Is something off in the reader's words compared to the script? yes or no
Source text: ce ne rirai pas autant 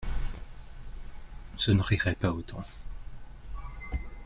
no